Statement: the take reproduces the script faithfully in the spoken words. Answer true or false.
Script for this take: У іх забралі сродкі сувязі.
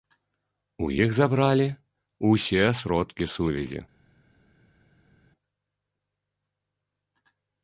false